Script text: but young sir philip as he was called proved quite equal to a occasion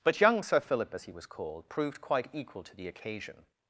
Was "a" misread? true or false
true